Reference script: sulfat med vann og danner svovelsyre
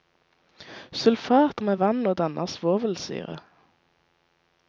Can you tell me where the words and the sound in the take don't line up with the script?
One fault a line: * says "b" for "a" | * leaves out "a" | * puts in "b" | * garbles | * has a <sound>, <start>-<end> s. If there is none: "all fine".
all fine